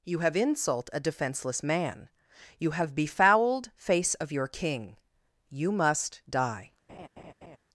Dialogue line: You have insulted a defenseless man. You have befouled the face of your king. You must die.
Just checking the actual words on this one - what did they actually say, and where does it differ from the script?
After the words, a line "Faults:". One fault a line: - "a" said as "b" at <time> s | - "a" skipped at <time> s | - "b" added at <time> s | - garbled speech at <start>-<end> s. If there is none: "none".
You have insult a defenseless man. You have befouled face of your king. You must die.
Faults:
- "insulted" said as "insult" at 0.3 s
- "the" skipped at 3.7 s